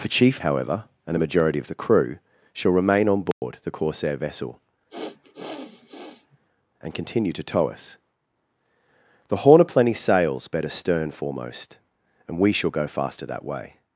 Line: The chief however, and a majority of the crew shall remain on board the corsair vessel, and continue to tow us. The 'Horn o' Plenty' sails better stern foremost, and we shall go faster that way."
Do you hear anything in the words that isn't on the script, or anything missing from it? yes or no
no